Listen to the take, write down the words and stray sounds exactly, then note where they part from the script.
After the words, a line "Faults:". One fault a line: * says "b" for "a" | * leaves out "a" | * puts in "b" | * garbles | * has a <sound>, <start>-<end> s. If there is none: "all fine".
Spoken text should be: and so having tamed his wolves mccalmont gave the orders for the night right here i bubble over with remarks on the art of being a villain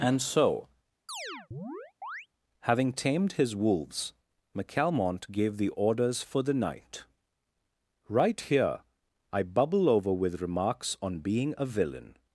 and so having tamed his wolves mccalmont gave the orders for the night right here i bubble over with remarks on being a villain
Faults:
* has a chirp, 1.1-2.3 s
* leaves out "the art of"